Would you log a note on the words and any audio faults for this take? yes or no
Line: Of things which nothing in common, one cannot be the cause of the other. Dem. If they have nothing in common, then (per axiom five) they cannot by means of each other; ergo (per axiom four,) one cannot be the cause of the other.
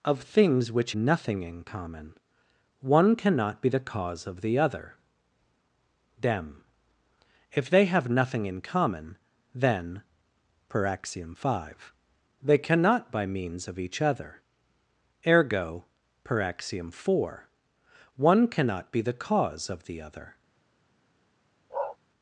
yes